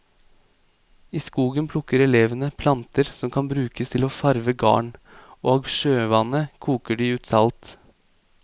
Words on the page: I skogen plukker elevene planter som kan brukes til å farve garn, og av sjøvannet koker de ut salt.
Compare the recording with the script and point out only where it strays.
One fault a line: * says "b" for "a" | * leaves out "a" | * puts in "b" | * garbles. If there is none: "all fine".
all fine